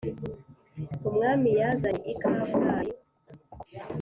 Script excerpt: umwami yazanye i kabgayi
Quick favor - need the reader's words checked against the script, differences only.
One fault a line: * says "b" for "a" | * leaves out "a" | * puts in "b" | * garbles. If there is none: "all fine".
all fine